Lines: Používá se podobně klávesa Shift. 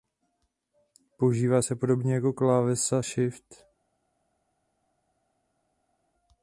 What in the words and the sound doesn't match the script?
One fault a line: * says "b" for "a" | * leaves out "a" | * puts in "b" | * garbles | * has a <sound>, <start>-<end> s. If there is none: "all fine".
* puts in "jako"